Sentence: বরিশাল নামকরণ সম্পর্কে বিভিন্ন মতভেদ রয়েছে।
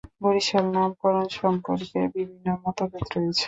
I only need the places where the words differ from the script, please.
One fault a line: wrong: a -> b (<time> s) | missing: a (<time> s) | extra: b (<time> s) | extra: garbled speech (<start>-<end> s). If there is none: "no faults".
no faults